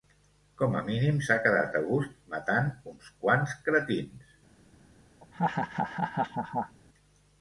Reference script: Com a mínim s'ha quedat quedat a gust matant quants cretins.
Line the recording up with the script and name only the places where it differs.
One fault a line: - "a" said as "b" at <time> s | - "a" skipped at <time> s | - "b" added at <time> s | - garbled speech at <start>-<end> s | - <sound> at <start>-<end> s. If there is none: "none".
- "quedat" skipped at 1.8 s
- "uns" added at 3.0 s
- laugh at 5.2-6.8 s